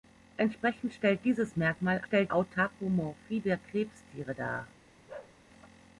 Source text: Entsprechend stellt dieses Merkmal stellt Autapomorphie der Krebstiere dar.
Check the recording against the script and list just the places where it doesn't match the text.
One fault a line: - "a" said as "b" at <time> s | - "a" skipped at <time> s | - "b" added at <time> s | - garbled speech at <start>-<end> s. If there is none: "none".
none